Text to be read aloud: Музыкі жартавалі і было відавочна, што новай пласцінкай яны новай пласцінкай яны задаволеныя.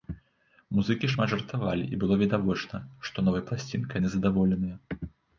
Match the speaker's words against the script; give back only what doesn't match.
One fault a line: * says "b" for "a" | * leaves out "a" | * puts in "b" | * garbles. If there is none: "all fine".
* puts in "шмат"
* leaves out "новай пласцінкай яны"